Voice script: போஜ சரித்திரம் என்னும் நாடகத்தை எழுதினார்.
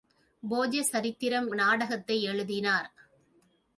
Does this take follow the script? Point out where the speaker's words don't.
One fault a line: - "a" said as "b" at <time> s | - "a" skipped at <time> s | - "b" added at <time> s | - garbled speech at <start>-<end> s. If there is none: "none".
- "என்னும்" skipped at 1.5 s